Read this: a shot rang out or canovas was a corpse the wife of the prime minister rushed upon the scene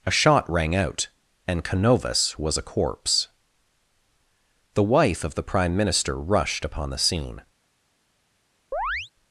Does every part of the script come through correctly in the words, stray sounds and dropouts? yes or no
no